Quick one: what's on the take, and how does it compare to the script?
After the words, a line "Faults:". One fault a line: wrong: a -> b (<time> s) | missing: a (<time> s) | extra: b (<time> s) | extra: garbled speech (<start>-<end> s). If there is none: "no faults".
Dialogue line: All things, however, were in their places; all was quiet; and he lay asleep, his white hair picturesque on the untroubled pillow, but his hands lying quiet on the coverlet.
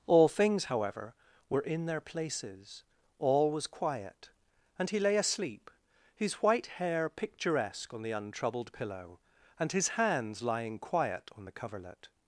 All things, however, were in their places; all was quiet; and he lay asleep, his white hair picturesque on the untroubled pillow, and his hands lying quiet on the coverlet.
Faults:
wrong: but -> and (9.6 s)